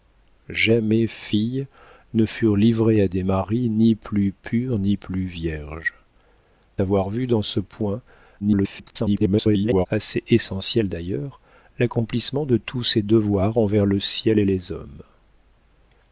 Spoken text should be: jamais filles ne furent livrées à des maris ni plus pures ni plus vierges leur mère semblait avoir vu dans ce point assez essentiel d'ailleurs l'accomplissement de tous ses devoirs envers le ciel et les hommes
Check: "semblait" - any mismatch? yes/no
yes